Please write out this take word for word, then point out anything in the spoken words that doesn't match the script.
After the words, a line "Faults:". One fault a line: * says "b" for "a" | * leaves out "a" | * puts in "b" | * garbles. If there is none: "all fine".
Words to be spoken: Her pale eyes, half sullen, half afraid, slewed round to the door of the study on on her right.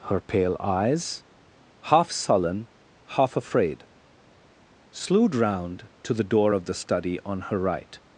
Her pale eyes, half sullen, half afraid, slewed round to the door of the study on her right.
Faults:
* leaves out "on"